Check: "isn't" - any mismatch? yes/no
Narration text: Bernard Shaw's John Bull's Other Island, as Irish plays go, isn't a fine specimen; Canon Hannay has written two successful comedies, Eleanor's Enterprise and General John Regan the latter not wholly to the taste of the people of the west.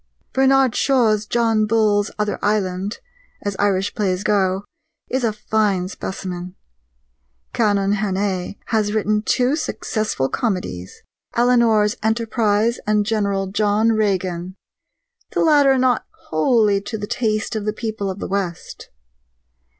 yes